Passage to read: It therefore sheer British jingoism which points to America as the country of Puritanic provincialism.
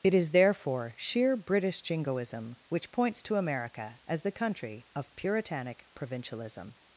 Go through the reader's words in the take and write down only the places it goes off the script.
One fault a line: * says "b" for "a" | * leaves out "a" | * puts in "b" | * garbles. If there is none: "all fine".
* puts in "is"